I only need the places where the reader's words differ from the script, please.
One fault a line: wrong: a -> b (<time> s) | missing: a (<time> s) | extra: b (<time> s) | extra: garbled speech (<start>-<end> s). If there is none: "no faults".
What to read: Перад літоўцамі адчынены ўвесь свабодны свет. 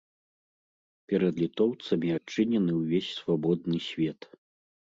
no faults